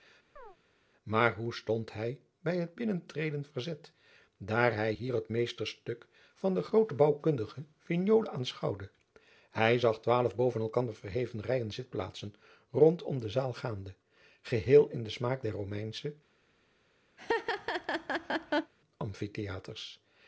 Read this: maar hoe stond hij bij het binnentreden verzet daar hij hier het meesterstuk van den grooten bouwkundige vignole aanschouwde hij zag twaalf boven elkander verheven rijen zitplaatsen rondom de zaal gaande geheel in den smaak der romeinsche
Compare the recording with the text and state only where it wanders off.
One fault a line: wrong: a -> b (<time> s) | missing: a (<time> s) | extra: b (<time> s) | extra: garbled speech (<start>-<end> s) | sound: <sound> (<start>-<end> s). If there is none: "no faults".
sound: chirp (0.4-0.6 s)
sound: laugh (17.2-18.7 s)